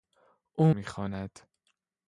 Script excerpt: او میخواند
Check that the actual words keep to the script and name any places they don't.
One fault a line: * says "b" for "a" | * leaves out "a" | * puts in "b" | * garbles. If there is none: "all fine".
all fine